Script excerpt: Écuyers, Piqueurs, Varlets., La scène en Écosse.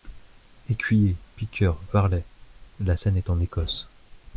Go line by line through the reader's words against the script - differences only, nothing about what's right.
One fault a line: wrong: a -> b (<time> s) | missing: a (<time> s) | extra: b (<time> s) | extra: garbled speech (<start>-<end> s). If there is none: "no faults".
extra: est (3.2 s)